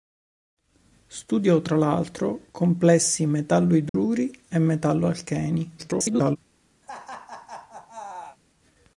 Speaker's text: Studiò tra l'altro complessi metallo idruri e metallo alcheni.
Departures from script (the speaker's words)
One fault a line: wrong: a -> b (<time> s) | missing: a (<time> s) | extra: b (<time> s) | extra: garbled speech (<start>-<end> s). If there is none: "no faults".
extra: garbled speech (5.8-6.4 s)